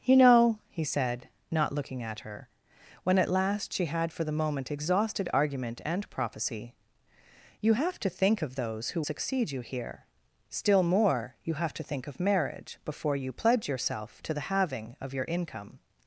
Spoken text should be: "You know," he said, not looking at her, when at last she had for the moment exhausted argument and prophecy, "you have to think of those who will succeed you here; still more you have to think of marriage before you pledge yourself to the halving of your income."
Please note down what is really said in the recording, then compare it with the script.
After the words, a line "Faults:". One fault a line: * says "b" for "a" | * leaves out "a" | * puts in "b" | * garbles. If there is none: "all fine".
"You know," he said, not looking at her, when at last she had for the moment exhausted argument and prophecy, "you have to think of those who succeed you here; still more you have to think of marriage before you pledge yourself to the halving of your income."
Faults:
* leaves out "will"